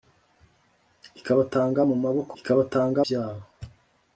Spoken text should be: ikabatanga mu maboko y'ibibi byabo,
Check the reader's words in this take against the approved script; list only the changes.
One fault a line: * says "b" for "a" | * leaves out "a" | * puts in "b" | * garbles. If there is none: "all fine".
* says "ikabatanga" for "y'ibibi"